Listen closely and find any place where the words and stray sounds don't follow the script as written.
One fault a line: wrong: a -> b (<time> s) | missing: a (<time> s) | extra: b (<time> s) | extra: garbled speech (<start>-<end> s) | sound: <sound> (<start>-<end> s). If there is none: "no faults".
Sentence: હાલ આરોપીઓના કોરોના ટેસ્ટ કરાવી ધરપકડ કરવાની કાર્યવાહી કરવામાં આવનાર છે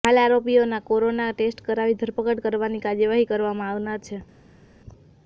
no faults